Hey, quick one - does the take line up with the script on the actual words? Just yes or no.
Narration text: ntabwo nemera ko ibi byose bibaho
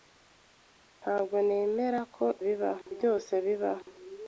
no